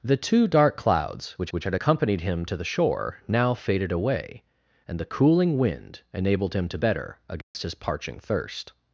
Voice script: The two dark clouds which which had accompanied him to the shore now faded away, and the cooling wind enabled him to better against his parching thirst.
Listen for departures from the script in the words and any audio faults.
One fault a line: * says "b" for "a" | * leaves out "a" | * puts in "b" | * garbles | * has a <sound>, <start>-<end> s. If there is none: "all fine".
* has a dropout, 7.4-7.5 s